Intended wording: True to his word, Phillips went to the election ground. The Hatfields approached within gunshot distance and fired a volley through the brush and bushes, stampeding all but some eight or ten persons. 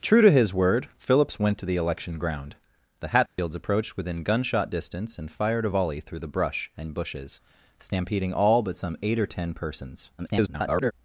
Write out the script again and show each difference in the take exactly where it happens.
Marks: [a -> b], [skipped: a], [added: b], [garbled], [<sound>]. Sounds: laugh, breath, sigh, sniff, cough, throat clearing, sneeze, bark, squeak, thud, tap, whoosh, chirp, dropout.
True to his word, Phillips went to the election ground. The Hatfields [dropout] approached within gunshot distance and fired a volley through the brush and bushes, stampeding all but some eight or ten persons. [garbled]